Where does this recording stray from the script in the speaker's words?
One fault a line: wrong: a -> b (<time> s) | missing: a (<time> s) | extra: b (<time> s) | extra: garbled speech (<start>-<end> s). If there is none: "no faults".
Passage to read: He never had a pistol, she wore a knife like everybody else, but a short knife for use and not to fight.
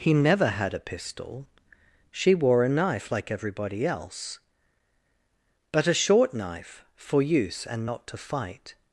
no faults